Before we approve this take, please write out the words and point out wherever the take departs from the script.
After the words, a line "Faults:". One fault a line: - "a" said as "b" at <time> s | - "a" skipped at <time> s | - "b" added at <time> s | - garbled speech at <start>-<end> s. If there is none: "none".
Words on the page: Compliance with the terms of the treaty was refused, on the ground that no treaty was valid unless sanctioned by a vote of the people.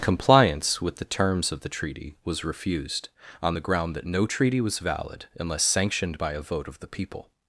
Compliance with the terms of the treaty was refused, on the ground that no treaty was valid unless sanctioned by a vote of the people.
Faults:
none